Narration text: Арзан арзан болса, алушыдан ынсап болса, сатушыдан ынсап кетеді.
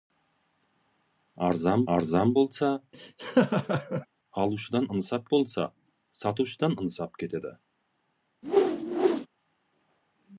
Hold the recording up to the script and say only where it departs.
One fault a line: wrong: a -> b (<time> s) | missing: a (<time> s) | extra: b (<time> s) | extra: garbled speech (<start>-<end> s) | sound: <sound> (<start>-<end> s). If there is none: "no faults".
sound: laugh (2.9-4.1 s)
sound: whoosh (8.4-9.3 s)